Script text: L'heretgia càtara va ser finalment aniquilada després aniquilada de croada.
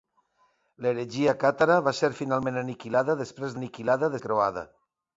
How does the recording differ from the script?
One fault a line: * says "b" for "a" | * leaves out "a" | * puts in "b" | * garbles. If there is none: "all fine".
all fine